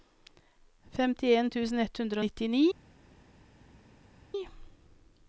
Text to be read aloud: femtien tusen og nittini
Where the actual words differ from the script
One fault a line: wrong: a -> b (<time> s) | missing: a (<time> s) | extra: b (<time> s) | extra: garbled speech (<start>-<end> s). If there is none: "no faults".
extra: ett hundre (1.8 s)